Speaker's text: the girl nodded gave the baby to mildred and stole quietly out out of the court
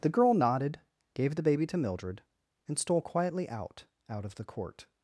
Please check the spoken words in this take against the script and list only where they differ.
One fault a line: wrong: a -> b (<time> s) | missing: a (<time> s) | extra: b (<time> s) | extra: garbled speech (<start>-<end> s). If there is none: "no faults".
no faults